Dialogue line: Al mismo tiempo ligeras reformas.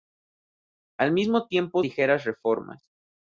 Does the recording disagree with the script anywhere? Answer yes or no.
no